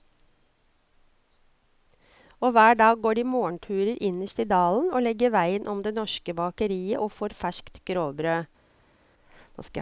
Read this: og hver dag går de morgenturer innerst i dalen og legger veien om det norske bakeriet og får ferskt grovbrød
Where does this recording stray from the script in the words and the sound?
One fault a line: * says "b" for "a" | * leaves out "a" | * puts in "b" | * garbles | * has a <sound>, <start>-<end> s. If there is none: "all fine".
all fine